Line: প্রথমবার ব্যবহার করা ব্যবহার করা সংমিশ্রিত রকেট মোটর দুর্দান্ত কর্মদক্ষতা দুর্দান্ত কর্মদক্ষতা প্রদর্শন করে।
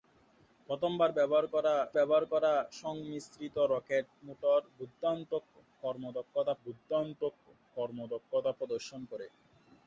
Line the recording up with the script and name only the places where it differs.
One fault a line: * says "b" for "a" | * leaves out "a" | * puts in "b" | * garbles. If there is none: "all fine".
all fine